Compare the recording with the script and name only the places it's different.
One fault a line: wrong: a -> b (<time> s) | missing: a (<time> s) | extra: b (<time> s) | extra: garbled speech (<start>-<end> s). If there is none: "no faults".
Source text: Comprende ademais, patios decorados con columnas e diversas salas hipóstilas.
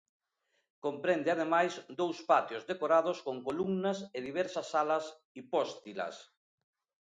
extra: dous (2.0 s)